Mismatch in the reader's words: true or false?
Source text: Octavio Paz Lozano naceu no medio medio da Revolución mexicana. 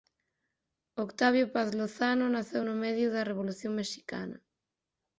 true